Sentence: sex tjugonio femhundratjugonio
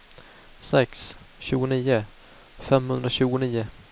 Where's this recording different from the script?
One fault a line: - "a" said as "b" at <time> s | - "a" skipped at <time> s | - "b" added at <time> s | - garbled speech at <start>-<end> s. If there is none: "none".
none